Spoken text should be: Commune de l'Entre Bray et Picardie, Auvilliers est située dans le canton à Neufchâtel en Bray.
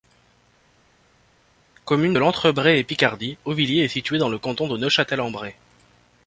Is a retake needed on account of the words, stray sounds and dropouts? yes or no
yes